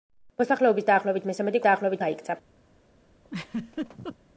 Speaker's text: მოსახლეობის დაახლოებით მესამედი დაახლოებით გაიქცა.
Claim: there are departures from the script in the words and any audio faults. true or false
true